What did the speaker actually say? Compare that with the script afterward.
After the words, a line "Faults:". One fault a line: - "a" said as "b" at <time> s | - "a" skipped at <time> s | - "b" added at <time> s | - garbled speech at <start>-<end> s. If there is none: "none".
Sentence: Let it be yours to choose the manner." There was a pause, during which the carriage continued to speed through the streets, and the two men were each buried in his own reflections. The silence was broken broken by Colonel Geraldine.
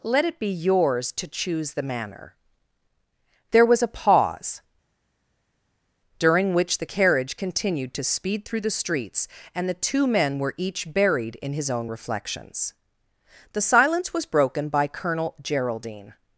Let it be yours to choose the manner." There was a pause, during which the carriage continued to speed through the streets, and the two men were each buried in his own reflections. The silence was broken by Colonel Geraldine.
Faults:
- "broken" skipped at 14.7 s